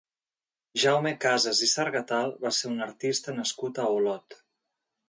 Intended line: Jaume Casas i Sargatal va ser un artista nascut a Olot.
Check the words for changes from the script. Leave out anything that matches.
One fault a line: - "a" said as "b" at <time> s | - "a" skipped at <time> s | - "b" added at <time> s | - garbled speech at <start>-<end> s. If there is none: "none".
none